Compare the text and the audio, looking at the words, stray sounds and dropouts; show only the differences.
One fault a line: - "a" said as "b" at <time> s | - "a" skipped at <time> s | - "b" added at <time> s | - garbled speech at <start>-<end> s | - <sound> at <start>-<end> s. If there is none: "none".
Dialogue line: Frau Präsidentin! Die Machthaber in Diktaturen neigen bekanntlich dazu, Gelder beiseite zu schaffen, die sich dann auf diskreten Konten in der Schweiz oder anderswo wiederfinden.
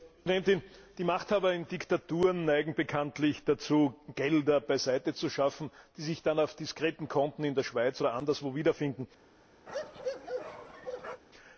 - bark at 9.7-11.2 s